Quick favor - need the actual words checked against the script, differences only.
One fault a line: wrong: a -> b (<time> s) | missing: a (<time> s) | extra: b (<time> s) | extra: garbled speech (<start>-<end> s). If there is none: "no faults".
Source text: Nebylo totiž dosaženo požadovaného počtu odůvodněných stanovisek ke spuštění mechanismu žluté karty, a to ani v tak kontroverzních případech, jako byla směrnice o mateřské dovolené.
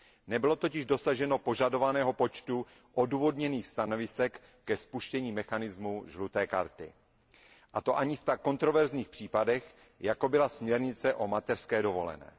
no faults